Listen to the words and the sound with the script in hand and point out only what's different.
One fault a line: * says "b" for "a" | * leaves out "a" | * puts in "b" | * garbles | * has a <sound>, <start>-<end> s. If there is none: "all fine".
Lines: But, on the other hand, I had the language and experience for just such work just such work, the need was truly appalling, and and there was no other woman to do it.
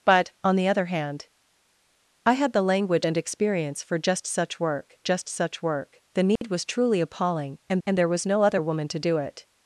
* has a dropout, 6.4-6.4 s